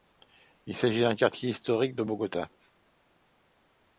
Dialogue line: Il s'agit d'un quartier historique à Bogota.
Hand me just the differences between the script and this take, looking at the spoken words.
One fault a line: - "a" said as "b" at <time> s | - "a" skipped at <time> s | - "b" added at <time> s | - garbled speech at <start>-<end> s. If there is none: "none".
- "à" said as "de" at 1.9 s